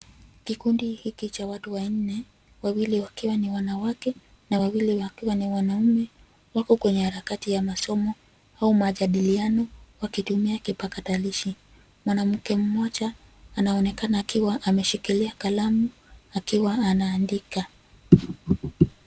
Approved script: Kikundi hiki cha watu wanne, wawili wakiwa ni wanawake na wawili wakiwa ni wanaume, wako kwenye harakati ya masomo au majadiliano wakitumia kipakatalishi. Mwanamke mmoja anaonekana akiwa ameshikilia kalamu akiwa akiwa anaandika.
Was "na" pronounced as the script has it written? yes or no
yes